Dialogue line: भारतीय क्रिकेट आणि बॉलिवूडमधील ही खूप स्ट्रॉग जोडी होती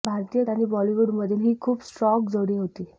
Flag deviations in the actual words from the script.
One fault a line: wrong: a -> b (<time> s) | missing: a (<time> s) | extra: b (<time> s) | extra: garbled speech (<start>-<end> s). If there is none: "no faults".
missing: क्रिकेट (0.4 s)